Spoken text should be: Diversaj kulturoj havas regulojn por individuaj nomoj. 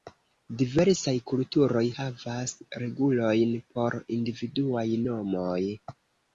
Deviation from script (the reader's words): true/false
false